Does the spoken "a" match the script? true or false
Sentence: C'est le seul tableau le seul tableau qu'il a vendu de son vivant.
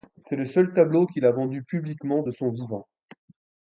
true